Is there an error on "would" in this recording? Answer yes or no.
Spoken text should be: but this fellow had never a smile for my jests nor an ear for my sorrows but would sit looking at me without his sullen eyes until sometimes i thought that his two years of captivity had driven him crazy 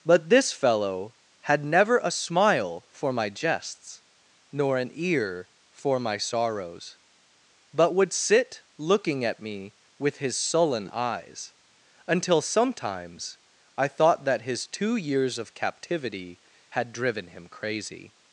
no